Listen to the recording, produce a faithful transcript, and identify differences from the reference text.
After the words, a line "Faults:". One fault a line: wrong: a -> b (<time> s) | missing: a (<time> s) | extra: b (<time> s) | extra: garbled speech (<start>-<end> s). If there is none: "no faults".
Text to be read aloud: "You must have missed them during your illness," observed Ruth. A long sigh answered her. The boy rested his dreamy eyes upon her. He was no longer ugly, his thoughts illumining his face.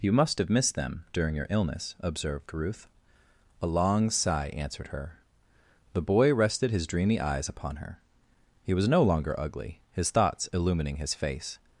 "You must have missed them during your illness," observed Ruth. A long sigh answered her. The boy rested his dreamy eyes upon her. He was no longer ugly, his thoughts illumining his face.
Faults:
no faults